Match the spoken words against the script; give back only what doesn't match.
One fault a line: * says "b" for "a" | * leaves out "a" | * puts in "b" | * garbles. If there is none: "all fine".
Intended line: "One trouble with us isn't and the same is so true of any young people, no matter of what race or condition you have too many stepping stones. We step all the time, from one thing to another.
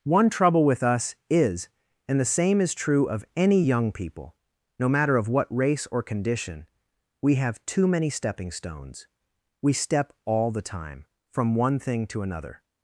* says "is" for "isn't"
* leaves out "so"
* says "we" for "you"